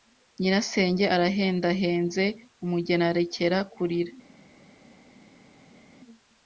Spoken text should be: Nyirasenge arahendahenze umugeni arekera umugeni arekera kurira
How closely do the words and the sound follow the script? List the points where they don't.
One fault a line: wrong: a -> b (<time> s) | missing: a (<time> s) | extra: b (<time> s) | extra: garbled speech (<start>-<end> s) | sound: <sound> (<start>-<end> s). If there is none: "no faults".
missing: umugeni arekera (3.6 s)